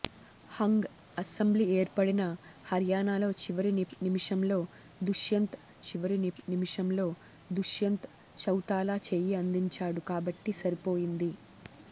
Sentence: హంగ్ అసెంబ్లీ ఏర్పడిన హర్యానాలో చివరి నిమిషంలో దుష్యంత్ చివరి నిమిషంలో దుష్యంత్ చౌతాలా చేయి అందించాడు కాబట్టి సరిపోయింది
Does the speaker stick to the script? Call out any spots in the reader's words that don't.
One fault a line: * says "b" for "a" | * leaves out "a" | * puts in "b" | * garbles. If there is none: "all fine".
all fine